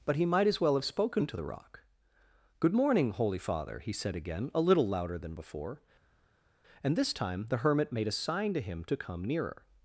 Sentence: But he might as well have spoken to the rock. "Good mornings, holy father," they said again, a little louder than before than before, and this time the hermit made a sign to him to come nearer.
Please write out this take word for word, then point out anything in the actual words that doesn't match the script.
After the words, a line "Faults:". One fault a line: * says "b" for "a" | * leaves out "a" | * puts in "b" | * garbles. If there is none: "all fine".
But he might as well have spoken to the rock. "Good morning, holy father," he said again, a little louder than before, and this time the hermit made a sign to him to come nearer.
Faults:
* says "morning" for "mornings"
* says "he" for "they"
* leaves out "than before"